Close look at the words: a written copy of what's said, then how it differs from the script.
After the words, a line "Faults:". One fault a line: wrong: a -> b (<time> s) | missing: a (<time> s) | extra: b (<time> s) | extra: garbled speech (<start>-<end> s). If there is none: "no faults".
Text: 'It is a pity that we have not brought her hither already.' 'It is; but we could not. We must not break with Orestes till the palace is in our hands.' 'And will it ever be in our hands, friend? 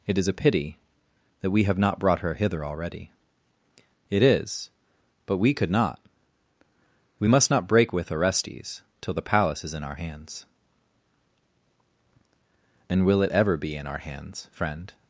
'It is a pity that we have not brought her hither already.' 'It is; but we could not. We must not break with Orestes till the palace is in our hands.' 'And will it ever be in our hands, friend?
Faults:
no faults